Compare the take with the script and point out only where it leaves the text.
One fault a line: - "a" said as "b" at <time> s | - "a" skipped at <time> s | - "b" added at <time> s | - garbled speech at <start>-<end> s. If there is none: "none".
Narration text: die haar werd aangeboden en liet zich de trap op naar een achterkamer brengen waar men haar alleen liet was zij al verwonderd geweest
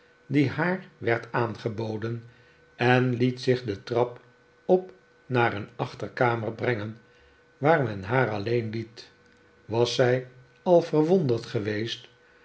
none